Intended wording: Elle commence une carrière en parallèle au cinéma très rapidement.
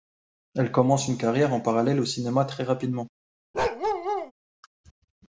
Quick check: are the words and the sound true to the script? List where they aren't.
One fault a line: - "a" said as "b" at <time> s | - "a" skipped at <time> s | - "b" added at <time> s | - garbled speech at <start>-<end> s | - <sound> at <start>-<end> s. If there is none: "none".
- bark at 3.5-4.3 s